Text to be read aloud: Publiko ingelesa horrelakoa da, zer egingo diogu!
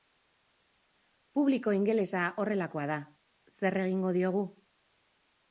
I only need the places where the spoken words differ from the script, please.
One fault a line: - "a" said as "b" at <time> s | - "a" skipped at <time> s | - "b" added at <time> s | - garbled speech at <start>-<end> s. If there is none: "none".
none